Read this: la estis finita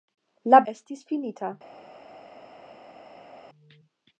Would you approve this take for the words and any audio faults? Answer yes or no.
yes